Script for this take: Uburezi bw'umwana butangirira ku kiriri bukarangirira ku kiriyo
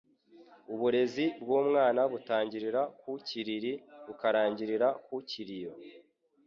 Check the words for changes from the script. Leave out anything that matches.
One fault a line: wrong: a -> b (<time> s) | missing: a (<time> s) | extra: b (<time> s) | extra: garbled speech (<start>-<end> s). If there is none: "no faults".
no faults